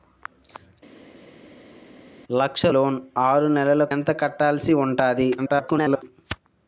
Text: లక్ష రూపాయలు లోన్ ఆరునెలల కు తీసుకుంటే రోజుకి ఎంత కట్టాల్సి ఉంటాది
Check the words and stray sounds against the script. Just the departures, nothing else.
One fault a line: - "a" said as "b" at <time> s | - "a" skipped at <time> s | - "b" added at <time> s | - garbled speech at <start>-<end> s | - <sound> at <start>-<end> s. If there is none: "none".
- "రూపాయలు" skipped at 2.6 s
- "కు తీసుకుంటే రోజుకి" skipped at 3.8 s
- garbled speech at 5.4-6.0 s